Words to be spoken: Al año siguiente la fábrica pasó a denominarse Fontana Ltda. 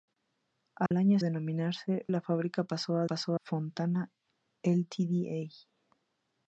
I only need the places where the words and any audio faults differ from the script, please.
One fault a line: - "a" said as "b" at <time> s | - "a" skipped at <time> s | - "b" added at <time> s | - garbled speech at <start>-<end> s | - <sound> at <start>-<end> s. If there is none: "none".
- dropout at 0.9-0.9 s
- "siguiente" said as "denominarse" at 1.2 s
- "denominarse" said as "pasó" at 3.0 s